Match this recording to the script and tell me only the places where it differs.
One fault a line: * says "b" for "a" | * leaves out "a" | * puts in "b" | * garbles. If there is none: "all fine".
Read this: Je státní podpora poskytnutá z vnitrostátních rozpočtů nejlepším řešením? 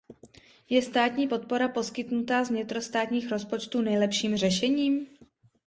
all fine